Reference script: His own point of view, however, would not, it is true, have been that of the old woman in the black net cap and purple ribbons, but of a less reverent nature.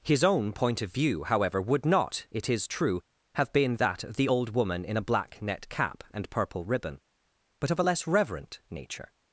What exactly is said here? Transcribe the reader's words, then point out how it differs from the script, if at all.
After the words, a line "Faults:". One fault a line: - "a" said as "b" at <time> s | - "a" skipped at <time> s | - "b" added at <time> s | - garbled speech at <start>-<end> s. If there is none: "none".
His own point of view, however, would not, it is true, have been that of the old woman in a black net cap and purple ribbon, but of a less reverent nature.
Faults:
- "the" said as "a" at 5.0 s
- "ribbons" said as "ribbon" at 6.7 s